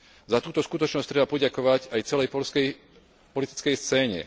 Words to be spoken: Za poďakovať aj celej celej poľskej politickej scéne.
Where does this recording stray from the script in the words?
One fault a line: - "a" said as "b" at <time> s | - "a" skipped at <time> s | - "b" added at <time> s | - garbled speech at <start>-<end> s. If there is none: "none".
- "túto skutočnosť treba" added at 0.4 s
- "celej" skipped at 2.3 s